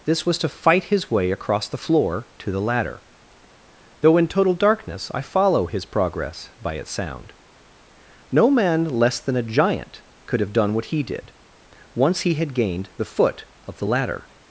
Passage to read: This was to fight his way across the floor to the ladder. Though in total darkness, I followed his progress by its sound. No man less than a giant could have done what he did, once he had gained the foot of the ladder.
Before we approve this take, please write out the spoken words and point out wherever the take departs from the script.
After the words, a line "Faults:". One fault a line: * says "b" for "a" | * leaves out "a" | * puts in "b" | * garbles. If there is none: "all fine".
This was to fight his way across the floor to the ladder. Though in total darkness, I follow his progress by its sound. No man less than a giant could have done what he did, once he had gained the foot of the ladder.
Faults:
* says "follow" for "followed"